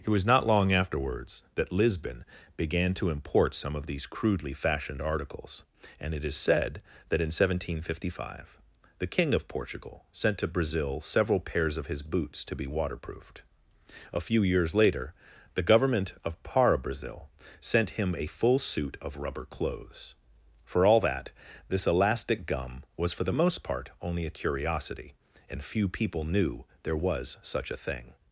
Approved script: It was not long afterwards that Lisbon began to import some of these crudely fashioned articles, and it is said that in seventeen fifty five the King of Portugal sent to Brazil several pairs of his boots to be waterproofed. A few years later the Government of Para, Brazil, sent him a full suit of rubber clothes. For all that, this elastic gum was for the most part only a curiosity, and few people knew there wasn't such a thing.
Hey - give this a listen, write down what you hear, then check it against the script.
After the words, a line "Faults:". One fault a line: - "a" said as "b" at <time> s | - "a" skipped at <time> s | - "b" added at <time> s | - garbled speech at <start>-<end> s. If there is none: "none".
It was not long afterwards that Lisbon began to import some of these crudely fashioned articles, and it is said that in seventeen fifty five the King of Portugal sent to Brazil several pairs of his boots to be waterproofed. A few years later the Government of Para, Brazil, sent him a full suit of rubber clothes. For all that, this elastic gum was for the most part only a curiosity, and few people knew there was such a thing.
Faults:
- "wasn't" said as "was" at 27.0 s